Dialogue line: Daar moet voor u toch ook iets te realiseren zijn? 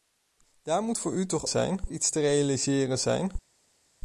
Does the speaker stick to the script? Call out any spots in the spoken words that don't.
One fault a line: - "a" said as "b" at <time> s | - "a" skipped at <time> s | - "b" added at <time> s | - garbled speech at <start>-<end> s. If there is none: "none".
- "ook" said as "zijn" at 1.5 s